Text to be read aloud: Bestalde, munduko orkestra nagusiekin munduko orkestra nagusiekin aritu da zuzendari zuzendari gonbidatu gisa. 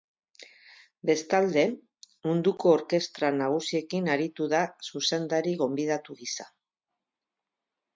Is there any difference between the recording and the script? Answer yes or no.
yes